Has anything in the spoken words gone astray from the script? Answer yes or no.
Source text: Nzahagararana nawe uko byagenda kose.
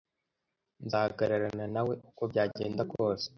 no